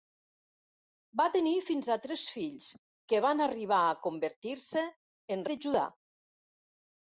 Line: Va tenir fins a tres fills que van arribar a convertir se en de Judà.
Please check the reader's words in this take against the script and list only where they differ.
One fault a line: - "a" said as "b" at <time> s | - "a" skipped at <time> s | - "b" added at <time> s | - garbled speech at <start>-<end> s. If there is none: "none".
none